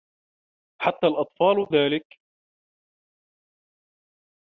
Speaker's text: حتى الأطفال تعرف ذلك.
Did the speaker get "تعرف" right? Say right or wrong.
wrong